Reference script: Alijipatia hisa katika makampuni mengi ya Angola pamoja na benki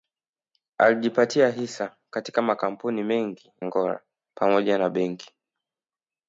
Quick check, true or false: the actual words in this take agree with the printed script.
false